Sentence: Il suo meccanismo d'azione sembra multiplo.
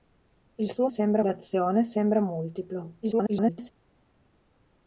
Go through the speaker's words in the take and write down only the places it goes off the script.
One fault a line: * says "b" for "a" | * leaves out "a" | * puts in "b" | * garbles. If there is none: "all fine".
* says "sembra" for "meccanismo"
* garbles